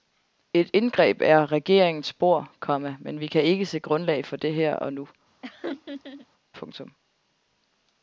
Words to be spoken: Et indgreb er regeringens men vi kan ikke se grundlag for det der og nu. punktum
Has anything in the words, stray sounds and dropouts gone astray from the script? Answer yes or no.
yes